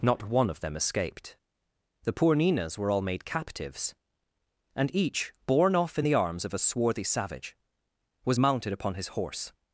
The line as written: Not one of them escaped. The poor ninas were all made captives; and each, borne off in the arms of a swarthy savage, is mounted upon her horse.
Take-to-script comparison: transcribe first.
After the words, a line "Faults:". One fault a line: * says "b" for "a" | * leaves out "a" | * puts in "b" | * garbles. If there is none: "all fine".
Not one of them escaped. The poor ninas were all made captives; and each, borne off in the arms of a swarthy savage, was mounted upon his horse.
Faults:
* says "was" for "is"
* says "his" for "her"